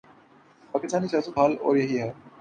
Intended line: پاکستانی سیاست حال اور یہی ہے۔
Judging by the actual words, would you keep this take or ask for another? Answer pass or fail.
pass